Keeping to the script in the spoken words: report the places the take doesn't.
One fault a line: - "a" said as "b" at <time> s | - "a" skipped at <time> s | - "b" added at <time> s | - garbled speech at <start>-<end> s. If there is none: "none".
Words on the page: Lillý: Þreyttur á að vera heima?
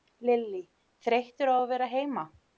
none